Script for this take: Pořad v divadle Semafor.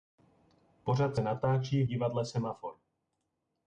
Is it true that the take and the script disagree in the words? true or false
true